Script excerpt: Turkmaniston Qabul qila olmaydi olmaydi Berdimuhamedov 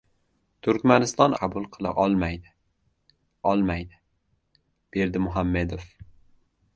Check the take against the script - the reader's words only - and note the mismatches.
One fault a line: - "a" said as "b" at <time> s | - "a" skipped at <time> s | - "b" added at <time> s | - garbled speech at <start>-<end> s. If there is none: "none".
none